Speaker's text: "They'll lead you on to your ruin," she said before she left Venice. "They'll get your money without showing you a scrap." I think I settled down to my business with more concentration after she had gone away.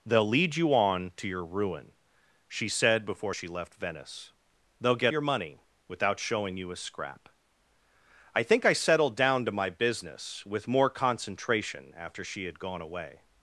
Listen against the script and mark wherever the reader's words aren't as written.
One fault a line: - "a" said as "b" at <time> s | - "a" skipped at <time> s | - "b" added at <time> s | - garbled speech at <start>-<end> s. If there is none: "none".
none